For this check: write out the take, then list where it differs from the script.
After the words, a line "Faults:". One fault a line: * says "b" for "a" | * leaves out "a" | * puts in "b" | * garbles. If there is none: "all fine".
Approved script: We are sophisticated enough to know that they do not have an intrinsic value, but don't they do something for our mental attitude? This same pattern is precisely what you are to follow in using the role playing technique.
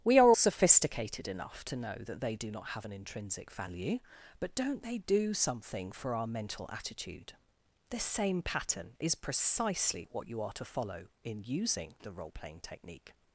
We are sophisticated enough to know that they do not have an intrinsic value, but don't they do something for our mental attitude? This same pattern is precisely what you are to follow in using the role playing technique.
Faults:
all fine